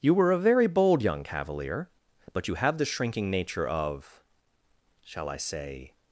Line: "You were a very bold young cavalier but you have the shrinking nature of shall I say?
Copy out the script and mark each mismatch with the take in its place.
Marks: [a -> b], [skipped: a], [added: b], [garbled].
"You were a very bold young cavalier but you have the shrinking nature of shall I say?